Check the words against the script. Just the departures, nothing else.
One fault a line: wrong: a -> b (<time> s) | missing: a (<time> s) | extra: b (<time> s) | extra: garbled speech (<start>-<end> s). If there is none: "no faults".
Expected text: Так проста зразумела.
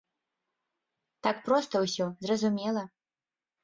extra: ўсё (1.9 s)